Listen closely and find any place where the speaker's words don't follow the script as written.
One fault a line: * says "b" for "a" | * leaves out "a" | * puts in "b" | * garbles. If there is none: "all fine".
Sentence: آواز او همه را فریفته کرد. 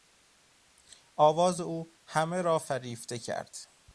all fine